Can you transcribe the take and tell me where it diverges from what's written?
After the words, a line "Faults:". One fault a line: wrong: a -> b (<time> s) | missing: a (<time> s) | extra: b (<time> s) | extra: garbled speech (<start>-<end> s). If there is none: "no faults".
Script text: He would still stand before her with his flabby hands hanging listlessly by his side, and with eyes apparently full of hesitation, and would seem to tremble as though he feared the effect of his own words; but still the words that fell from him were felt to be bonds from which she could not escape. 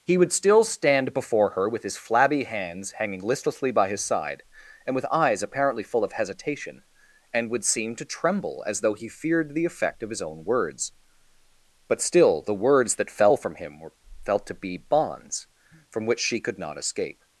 He would still stand before her with his flabby hands hanging listlessly by his side, and with eyes apparently full of hesitation, and would seem to tremble as though he feared the effect of his own words; but still the words that fell from him were felt to be bonds from which she could not escape.
Faults:
no faults